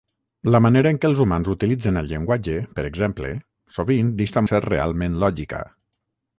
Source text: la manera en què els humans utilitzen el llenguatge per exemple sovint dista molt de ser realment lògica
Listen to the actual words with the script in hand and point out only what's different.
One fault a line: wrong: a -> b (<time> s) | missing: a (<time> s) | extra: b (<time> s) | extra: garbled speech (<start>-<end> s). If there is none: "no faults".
missing: molt (4.5 s)